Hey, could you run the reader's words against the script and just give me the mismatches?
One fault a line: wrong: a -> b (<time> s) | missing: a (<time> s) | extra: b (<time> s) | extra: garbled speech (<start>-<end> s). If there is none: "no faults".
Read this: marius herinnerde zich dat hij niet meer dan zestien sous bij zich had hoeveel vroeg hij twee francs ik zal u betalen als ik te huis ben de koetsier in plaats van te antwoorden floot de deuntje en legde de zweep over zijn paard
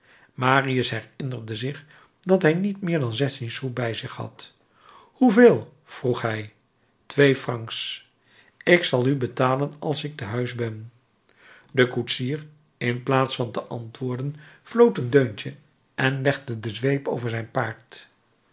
wrong: de -> een (15.0 s)